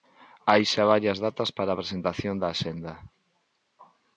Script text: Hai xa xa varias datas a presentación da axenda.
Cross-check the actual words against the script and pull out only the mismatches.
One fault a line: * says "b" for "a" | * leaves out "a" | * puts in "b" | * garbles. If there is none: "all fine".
* leaves out "xa"
* puts in "para"